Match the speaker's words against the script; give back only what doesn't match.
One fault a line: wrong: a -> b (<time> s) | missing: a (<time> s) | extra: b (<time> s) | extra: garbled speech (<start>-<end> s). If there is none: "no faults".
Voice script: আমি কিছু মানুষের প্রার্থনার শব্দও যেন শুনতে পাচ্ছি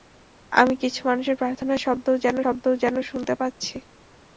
extra: শব্দও যেন (2.4 s)